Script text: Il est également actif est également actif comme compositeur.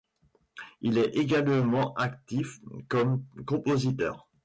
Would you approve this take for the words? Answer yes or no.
no